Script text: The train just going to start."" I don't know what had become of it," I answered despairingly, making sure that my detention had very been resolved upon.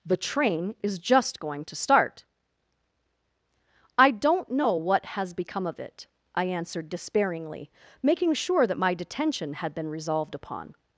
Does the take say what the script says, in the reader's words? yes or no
no